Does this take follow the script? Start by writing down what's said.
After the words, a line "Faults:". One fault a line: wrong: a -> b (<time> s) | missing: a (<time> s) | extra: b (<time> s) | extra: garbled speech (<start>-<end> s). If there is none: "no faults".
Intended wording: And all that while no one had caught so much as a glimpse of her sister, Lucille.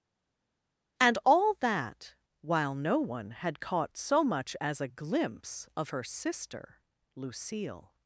And all that while no one had caught so much as a glimpse of her sister, Lucille.
Faults:
no faults